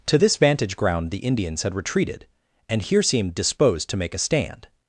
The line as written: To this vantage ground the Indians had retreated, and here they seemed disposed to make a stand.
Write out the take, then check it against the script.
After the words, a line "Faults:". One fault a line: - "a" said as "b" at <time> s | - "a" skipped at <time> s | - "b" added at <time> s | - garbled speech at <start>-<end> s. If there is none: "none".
To this vantage ground the Indians had retreated, and here seemed disposed to make a stand.
Faults:
- "they" skipped at 3.0 s